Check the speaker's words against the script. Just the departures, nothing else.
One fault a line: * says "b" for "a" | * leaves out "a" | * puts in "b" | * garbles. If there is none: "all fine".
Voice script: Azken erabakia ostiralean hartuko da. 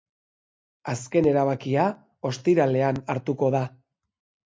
all fine